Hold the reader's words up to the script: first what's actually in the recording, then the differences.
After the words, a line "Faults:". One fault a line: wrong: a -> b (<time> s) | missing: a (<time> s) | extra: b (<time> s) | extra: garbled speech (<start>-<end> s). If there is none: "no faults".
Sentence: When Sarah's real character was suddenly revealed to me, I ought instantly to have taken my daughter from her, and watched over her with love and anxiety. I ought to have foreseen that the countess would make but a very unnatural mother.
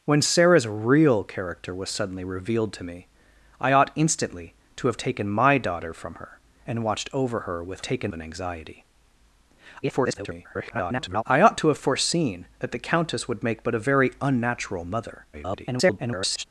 When Sarah's real character was suddenly revealed to me, I ought instantly to have taken my daughter from her, and watched over her with taken and anxiety. [garbled] I ought to have foreseen that the countess would make but a very unnatural mother. [garbled]
Faults:
wrong: love -> taken (7.8 s)
extra: garbled speech (9.8-11.2 s)
extra: garbled speech (15.3-16.4 s)